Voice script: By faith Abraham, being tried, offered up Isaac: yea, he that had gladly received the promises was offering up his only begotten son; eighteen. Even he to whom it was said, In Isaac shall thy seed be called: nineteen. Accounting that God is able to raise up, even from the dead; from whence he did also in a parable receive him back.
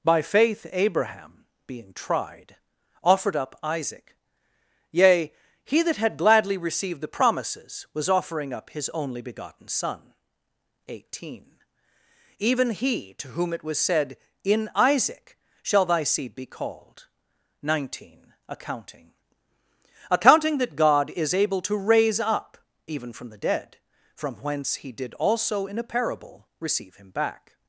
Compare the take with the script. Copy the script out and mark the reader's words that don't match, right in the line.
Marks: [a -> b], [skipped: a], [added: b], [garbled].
By faith Abraham, being tried, offered up Isaac: yea, he that had gladly received the promises was offering up his only begotten son; eighteen. Even he to whom it was said, In Isaac shall thy seed be called: nineteen. Accounting [added: Accounting] that God is able to raise up, even from the dead; from whence he did also in a parable receive him back.